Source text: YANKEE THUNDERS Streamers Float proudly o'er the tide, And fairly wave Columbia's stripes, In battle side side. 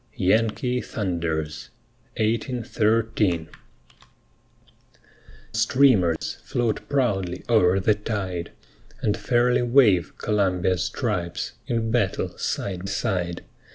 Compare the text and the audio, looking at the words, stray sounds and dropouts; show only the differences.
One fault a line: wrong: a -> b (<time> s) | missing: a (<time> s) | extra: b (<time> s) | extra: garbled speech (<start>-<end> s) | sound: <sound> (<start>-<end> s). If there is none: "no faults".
sound: dropout (6.2-6.2 s)